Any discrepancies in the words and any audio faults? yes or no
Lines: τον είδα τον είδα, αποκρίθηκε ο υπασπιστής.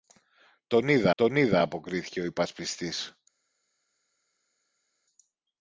no